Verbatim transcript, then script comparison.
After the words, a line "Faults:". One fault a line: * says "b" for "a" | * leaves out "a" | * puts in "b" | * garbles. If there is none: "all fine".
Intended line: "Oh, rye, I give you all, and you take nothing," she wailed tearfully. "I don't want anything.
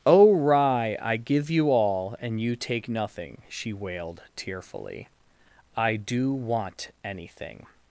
"Oh, rye, I give you all, and you take nothing," she wailed tearfully. "I do want anything.
Faults:
* says "do" for "don't"